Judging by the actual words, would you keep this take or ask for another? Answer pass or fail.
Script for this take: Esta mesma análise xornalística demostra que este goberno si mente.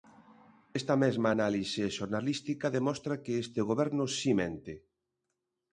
pass